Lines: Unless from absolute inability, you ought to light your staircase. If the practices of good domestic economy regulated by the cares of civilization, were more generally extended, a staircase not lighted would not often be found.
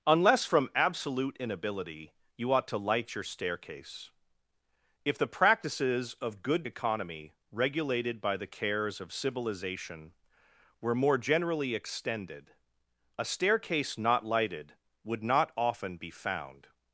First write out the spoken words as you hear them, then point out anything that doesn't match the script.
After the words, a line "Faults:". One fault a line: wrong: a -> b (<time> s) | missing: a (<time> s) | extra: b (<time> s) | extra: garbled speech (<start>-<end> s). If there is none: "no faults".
Unless from absolute inability, you ought to light your staircase. If the practices of good economy regulated by the cares of civilization, were more generally extended, a staircase not lighted would not often be found.
Faults:
missing: domestic (6.6 s)